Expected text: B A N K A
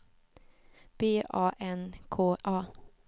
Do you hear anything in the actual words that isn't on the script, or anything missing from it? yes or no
no